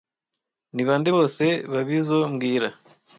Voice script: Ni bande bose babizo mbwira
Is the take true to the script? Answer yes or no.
yes